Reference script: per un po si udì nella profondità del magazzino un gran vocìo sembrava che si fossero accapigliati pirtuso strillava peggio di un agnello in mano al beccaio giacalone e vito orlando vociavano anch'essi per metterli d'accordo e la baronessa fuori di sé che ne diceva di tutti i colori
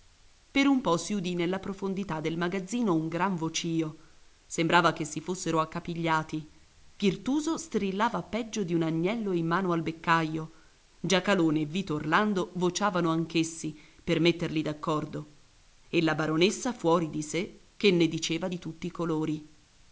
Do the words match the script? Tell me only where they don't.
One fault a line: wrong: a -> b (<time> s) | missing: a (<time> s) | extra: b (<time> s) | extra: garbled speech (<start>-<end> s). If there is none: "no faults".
no faults